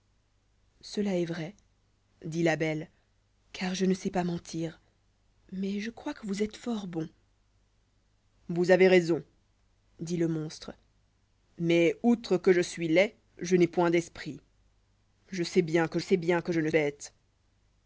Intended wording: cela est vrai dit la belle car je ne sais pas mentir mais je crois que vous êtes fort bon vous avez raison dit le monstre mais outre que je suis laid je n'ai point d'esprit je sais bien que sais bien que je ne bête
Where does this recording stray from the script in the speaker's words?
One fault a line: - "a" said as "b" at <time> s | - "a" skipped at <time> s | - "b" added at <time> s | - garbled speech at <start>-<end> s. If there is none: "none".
none